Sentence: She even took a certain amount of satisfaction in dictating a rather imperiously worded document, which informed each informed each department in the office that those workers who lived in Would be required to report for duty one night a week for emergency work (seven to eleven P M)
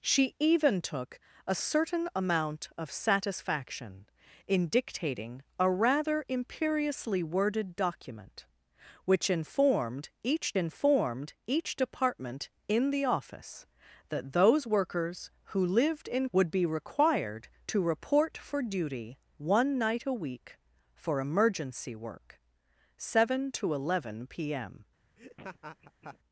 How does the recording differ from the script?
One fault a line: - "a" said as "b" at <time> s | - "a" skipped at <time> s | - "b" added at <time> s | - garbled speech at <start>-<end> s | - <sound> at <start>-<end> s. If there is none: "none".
- laugh at 25.2-26.2 s